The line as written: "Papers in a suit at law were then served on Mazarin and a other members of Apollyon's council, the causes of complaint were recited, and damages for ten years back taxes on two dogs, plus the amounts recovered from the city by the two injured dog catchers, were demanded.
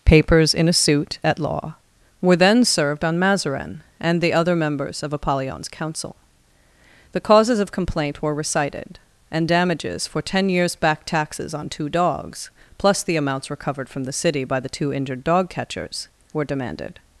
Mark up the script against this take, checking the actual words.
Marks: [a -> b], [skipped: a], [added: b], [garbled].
"Papers in a suit at law were then served on Mazarin and [a -> the] other members of Apollyon's council, the causes of complaint were recited, and damages for ten years back taxes on two dogs, plus the amounts recovered from the city by the two injured dog catchers, were demanded.